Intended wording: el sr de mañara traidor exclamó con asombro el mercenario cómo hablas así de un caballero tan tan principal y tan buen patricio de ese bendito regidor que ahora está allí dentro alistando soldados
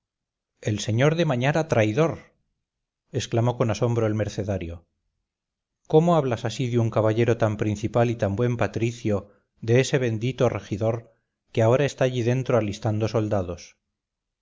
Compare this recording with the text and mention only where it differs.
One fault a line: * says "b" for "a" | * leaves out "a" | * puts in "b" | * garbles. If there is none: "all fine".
* leaves out "tan"